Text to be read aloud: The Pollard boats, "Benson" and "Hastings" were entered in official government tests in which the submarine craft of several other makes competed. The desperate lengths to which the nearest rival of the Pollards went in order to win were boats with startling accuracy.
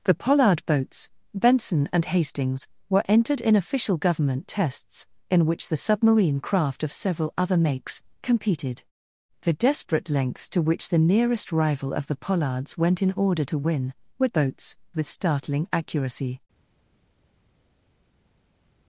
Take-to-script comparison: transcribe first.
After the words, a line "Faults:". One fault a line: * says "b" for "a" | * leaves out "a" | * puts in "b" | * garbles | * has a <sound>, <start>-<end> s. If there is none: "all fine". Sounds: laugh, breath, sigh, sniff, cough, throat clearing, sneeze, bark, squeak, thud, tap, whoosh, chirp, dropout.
The Pollard boats, "Benson" and "Hastings" were entered in official government tests in which the submarine craft of several other makes competed. The desperate lengths to which the nearest rival of the Pollards went in order to win were boats with startling accuracy.
Faults:
all fine